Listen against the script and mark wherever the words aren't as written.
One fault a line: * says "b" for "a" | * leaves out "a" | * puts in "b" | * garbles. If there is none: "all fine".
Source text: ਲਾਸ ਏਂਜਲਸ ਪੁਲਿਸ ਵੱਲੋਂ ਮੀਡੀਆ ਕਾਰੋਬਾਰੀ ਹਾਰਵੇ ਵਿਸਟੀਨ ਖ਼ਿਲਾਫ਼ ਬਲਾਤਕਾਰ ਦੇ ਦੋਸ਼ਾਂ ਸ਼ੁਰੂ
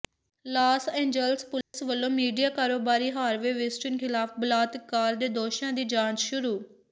* puts in "ਦੀ ਜਾਂਚ"